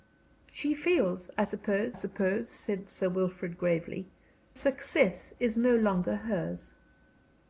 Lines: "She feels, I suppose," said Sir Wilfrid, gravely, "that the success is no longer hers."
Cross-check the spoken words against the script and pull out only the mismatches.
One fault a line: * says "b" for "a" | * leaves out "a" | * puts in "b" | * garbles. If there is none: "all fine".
* puts in "suppose"
* leaves out "that the"